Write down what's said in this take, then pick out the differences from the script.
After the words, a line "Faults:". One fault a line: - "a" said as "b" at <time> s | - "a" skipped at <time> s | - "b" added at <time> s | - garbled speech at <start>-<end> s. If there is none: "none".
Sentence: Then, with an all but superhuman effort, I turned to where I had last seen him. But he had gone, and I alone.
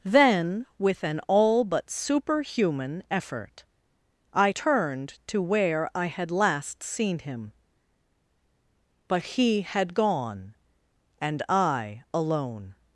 Then, with an all but superhuman effort, I turned to where I had last seen him. But he had gone, and I alone.
Faults:
none